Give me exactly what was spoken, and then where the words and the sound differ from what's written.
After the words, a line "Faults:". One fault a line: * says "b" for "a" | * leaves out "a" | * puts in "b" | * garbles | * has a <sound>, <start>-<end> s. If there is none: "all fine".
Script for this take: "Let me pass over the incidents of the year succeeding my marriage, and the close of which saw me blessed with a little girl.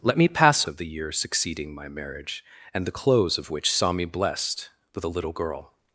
"Let me pass of the year succeeding my marriage, and the close of which saw me blessed with a little girl.
Faults:
* leaves out "over the incidents"